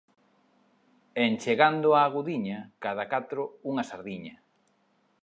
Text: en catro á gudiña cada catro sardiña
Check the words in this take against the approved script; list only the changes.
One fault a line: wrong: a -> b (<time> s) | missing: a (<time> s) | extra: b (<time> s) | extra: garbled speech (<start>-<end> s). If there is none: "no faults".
wrong: catro -> chegando (1.4 s)
extra: unha (3.7 s)